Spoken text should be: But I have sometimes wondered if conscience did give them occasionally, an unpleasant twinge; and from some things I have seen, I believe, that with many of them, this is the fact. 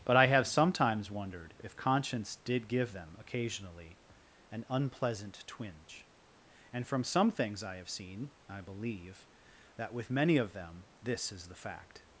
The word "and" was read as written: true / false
true